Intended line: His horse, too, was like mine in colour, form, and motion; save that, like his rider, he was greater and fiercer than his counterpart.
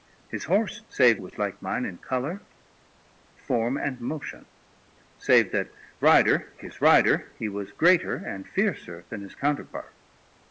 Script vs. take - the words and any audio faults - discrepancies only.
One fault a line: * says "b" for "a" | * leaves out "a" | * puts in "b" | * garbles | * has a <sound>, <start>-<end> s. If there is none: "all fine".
* says "save" for "too"
* says "rider" for "like"